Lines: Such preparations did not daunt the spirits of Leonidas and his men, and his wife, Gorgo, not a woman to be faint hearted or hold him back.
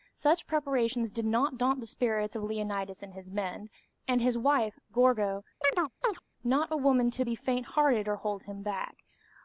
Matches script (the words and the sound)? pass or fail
fail